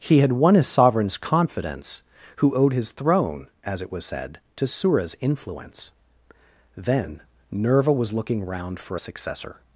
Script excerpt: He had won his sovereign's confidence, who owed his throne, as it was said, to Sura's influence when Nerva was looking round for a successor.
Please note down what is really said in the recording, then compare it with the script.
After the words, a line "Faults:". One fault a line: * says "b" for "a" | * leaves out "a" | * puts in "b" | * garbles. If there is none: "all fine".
He had won his sovereign's confidence, who owed his throne, as it was said, to Sura's influence then Nerva was looking round for a successor.
Faults:
* says "then" for "when"